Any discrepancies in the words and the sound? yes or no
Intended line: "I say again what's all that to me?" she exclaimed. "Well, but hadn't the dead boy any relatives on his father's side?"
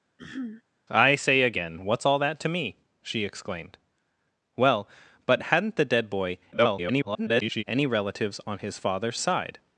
yes